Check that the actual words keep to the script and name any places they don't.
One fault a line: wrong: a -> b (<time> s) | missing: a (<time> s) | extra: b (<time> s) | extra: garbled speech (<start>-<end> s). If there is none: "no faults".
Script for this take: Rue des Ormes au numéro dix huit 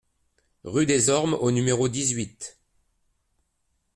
no faults